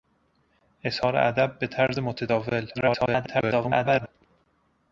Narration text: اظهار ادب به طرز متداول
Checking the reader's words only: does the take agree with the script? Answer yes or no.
no